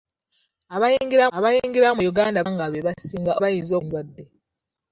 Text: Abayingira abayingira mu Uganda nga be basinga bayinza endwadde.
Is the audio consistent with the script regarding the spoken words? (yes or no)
yes